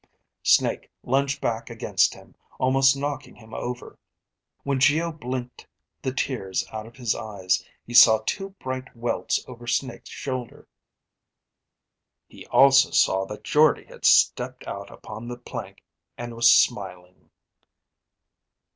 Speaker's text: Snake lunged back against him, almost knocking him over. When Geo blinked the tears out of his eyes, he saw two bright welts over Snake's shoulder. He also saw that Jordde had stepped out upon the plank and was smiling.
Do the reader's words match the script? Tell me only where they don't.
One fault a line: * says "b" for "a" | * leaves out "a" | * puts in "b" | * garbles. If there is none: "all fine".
all fine